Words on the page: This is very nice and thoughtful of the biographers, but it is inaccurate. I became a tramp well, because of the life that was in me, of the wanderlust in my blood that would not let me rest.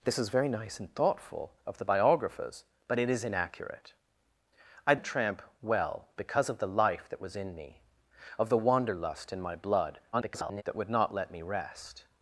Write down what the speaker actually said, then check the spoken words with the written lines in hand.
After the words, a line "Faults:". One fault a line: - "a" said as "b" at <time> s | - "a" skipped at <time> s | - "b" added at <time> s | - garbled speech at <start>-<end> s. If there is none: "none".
This is very nice and thoughtful of the biographers, but it is inaccurate. I a tramp well, because of the life that was in me, of the wanderlust in my blood [garbled] that would not let me rest.
Faults:
- "became" skipped at 5.0 s
- garbled speech at 10.1-10.6 s